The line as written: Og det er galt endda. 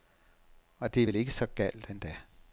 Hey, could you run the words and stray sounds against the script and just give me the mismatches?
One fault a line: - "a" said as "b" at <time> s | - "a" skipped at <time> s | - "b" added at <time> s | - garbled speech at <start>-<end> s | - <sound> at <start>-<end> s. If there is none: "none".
- "vel ikke så" added at 1.1 s